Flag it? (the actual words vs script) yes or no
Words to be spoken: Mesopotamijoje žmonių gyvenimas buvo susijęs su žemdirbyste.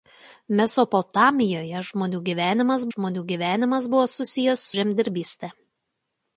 yes